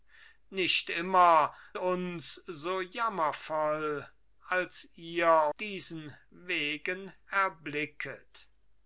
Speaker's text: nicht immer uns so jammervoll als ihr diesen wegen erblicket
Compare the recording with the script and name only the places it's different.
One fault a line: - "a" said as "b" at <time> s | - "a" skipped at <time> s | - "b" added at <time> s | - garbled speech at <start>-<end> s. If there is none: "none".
none